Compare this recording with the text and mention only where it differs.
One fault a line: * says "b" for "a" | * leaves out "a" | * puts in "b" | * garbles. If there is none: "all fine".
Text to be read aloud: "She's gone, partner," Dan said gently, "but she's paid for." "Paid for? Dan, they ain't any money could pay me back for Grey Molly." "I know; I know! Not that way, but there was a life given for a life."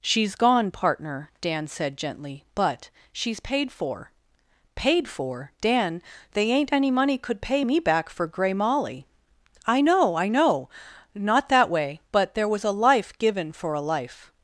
all fine